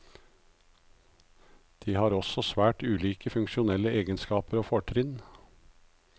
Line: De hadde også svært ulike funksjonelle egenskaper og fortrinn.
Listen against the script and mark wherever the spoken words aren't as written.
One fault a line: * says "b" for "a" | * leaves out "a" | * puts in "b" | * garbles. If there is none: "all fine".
* says "har" for "hadde"